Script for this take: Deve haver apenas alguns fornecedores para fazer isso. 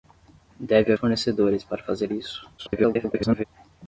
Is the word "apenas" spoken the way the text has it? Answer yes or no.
no